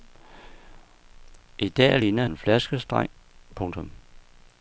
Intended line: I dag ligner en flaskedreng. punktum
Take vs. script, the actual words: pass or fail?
pass